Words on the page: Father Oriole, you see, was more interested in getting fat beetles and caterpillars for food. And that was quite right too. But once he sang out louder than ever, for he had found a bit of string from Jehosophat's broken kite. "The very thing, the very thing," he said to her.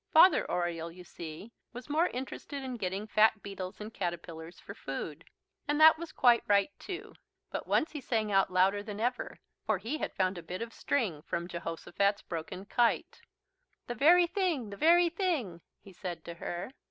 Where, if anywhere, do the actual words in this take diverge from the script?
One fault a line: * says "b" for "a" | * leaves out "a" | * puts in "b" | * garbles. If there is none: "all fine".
all fine